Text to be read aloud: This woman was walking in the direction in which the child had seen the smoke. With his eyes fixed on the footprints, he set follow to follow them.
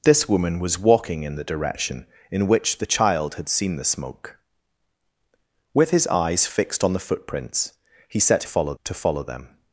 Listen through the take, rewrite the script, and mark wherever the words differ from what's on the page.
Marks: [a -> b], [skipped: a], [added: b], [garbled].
This woman was walking in the direction in which the child had seen the smoke. With his eyes fixed on the footprints, he set follow to follow them.